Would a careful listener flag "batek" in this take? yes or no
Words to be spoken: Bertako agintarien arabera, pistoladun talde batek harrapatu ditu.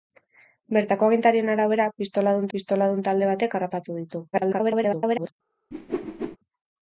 no